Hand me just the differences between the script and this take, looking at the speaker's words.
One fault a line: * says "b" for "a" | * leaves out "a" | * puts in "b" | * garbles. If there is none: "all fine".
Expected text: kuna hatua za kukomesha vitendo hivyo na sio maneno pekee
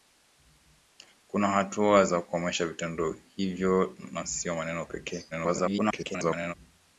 * garbles